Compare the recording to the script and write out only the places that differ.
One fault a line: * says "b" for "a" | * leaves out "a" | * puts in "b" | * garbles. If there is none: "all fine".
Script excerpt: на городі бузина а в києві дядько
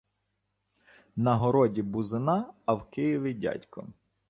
all fine